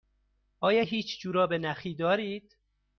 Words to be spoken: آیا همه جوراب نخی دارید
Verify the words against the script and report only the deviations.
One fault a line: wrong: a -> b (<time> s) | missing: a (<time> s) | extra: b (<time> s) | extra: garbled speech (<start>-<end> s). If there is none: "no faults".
wrong: همه -> هیچ (0.8 s)